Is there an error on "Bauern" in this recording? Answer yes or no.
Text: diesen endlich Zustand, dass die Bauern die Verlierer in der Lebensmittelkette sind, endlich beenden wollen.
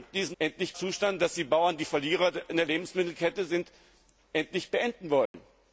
no